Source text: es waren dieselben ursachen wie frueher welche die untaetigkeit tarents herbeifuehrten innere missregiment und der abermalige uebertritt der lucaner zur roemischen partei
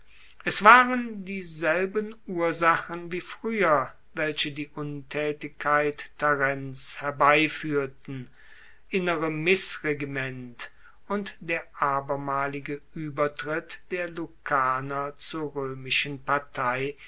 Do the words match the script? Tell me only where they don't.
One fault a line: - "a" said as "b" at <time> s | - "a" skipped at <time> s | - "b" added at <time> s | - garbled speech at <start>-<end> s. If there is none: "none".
none